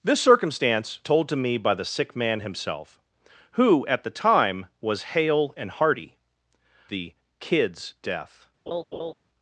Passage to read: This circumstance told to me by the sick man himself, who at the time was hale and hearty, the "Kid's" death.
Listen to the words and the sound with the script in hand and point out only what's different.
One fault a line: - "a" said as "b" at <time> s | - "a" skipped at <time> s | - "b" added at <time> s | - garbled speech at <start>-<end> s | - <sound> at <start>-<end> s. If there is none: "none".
- laugh at 8.7-9.1 s